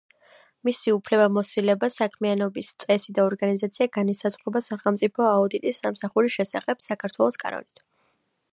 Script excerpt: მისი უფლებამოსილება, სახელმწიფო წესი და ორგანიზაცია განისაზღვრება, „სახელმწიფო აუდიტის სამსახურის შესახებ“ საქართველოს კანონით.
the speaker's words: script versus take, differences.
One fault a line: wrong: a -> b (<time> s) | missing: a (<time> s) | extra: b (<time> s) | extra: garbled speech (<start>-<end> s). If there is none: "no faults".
wrong: სახელმწიფო -> საქმიანობის (1.9 s)